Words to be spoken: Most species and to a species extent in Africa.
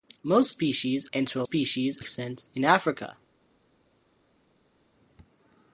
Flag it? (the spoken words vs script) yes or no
no